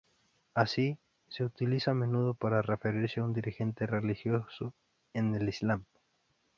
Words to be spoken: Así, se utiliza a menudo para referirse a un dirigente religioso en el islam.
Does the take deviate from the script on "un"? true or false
false